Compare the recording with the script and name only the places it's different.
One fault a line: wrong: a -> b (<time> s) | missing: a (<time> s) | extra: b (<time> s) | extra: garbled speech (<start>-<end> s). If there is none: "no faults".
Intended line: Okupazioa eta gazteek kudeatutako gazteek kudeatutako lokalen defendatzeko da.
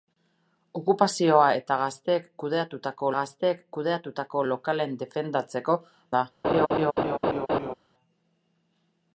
no faults